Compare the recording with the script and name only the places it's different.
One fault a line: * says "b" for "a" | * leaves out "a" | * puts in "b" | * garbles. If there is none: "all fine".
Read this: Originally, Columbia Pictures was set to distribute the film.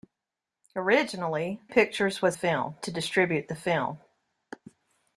* leaves out "Columbia"
* says "film" for "set"